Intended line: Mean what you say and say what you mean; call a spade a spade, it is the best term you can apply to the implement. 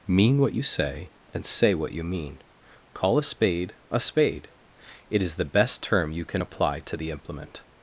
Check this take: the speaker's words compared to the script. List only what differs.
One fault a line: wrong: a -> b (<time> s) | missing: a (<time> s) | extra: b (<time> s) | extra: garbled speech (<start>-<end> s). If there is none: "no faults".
no faults